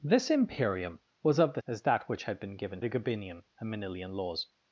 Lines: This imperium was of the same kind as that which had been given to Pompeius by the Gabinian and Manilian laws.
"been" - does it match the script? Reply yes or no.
yes